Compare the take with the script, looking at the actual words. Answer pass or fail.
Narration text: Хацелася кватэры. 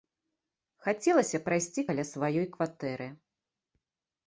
fail